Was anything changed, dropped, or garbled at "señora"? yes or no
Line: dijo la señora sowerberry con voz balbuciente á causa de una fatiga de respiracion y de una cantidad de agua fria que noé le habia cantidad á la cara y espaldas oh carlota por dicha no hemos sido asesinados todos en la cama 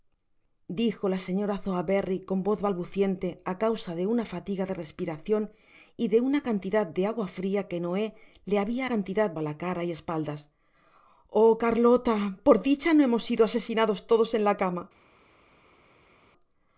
no